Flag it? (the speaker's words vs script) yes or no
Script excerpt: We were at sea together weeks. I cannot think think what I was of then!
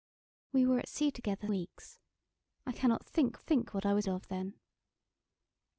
no